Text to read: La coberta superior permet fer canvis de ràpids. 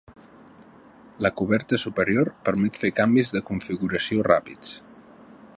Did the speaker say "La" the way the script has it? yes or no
yes